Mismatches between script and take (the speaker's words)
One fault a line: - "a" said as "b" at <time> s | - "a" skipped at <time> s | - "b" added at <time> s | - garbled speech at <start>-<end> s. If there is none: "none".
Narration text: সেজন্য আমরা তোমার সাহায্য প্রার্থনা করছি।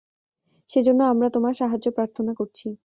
none